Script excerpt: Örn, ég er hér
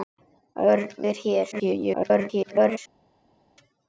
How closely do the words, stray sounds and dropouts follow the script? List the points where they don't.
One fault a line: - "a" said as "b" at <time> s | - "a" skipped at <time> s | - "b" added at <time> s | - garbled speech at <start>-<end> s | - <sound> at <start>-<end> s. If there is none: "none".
- "ég" skipped at 1.1 s
- garbled speech at 1.5-2.8 s